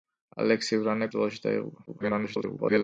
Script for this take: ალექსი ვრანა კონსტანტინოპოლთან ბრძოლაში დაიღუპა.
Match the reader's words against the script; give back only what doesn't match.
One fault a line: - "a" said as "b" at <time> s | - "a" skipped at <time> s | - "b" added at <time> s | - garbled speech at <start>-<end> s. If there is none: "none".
- "კონსტანტინოპოლთან" skipped at 1.1 s
- garbled speech at 1.9-2.8 s